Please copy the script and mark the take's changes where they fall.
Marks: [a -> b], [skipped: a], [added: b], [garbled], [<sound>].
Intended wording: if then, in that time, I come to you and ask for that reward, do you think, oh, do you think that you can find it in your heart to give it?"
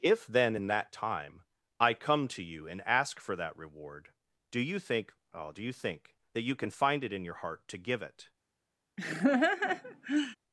if then, in that time, I come to you and ask for that reward, do you think, oh, do you think that you can find it in your heart to give it?" [laugh]